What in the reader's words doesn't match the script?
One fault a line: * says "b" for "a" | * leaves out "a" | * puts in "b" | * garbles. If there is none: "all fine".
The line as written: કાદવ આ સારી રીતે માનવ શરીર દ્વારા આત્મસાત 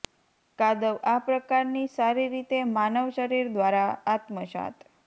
* puts in "પ્રકારની"